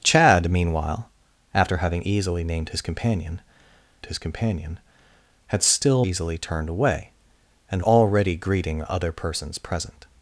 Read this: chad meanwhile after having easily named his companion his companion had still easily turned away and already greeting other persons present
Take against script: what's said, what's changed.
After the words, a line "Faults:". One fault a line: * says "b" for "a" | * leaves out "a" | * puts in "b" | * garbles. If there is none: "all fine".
chad meanwhile after having easily named his companion his companion had still easily turned away and already greeting other persons present
Faults:
all fine